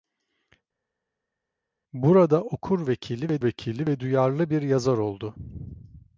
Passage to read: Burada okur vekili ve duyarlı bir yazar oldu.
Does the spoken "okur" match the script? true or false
true